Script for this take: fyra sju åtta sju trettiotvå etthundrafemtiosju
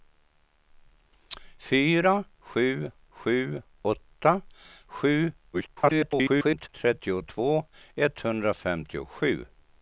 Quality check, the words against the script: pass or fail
fail